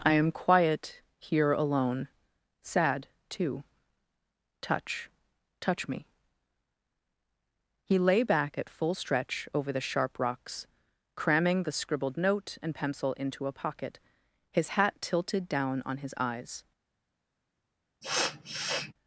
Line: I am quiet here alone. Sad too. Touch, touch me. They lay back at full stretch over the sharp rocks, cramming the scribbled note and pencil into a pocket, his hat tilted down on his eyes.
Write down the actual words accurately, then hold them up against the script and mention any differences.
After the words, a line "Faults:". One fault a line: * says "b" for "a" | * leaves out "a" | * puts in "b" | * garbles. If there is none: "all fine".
I am quiet here alone. Sad too. Touch, touch me. He lay back at full stretch over the sharp rocks, cramming the scribbled note and pencil into a pocket, his hat tilted down on his eyes.
Faults:
* says "He" for "They"